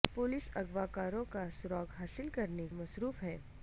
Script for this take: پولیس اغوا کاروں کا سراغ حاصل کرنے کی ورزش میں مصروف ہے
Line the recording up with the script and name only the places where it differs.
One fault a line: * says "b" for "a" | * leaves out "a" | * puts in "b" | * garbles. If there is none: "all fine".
* leaves out "کی ورزش میں"